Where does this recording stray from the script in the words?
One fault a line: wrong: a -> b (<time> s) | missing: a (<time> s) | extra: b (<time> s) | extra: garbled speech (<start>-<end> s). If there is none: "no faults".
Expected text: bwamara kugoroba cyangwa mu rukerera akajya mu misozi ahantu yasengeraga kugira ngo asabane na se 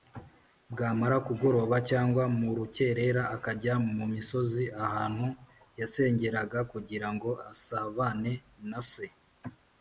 no faults